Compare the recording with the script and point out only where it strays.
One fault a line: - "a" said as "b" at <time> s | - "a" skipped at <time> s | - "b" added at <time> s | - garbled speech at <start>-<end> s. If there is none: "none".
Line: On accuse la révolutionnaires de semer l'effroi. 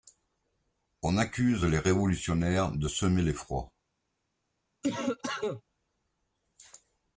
- "la" said as "les" at 1.6 s